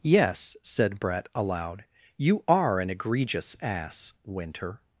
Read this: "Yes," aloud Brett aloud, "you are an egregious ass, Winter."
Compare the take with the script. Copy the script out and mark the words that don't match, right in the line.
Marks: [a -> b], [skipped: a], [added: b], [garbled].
"Yes," [aloud -> said] Brett aloud, "you are an egregious ass, Winter."